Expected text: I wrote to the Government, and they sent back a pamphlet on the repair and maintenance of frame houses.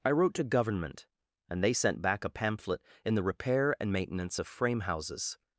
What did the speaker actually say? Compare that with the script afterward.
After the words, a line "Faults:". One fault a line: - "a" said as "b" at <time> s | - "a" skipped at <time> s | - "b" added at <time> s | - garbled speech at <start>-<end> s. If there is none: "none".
I wrote to Government, and they sent back a pamphlet in the repair and maintenance of frame houses.
Faults:
- "the" skipped at 0.4 s
- "on" said as "in" at 3.0 s